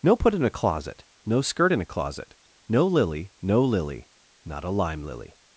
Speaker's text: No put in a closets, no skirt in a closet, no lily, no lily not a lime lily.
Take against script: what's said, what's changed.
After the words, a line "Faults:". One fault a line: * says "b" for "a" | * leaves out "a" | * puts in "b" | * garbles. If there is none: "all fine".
No put in a closet, no skirt in a closet, no lily, no lily not a lime lily.
Faults:
* says "closet" for "closets"